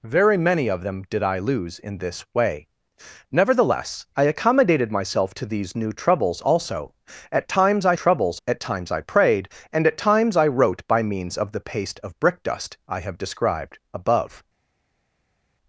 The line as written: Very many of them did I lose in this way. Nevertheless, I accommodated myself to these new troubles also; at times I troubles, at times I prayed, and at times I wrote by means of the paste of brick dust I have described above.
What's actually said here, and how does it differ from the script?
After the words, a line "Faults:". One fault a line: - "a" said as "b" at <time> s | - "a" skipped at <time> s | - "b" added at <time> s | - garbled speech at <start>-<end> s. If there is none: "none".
Very many of them did I lose in this way. Nevertheless, I accommodated myself to these new troubles also; at times I troubles, at times I prayed, and at times I wrote by means of the paste of brick dust I have described above.
Faults:
none